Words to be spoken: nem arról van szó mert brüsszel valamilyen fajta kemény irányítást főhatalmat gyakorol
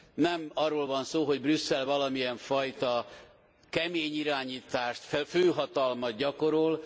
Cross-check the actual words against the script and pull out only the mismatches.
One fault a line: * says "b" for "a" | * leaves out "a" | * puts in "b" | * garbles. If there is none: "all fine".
* says "hogy" for "mert"